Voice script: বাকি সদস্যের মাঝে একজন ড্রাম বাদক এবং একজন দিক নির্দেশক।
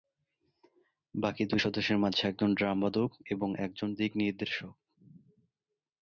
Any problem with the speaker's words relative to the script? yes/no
yes